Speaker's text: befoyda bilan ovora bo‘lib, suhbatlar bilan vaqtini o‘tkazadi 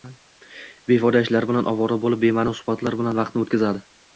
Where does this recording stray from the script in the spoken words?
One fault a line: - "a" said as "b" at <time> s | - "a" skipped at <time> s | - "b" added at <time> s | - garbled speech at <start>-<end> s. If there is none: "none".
- "ishlar" added at 1.3 s
- "bema'ni" added at 2.3 s